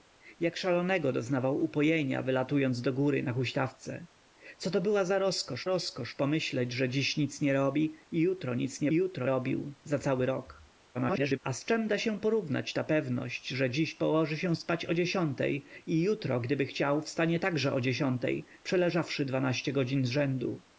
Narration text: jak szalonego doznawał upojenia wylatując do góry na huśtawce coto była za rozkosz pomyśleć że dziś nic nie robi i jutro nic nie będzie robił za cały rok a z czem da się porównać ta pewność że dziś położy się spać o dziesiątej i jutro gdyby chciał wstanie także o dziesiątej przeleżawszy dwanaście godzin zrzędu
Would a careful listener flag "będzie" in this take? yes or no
yes